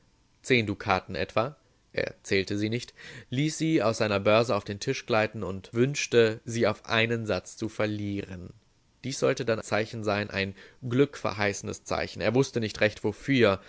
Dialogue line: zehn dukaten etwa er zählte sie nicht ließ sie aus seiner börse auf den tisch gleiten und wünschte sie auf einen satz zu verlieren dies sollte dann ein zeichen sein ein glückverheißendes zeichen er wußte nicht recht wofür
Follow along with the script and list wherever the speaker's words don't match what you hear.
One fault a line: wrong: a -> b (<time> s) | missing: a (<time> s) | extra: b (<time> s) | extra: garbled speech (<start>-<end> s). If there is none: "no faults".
missing: ein (9.6 s)